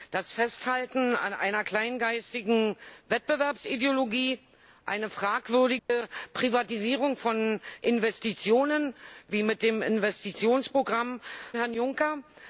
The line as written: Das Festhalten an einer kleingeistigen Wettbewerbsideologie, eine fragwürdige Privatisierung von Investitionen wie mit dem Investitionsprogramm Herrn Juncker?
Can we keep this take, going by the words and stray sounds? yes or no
no